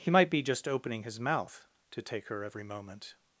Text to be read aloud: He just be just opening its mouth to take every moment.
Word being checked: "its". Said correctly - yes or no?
no